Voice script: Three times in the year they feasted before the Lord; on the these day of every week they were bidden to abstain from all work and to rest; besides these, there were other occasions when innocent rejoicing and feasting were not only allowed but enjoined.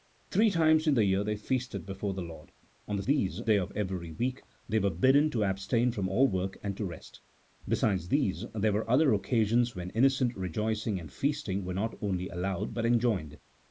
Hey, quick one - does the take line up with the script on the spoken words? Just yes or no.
yes